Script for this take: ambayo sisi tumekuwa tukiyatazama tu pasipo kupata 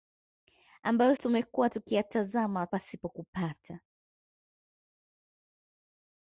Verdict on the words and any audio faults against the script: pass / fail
fail